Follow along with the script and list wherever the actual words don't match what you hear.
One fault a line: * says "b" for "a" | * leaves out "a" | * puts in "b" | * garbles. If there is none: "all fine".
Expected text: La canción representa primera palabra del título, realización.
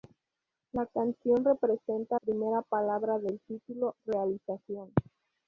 all fine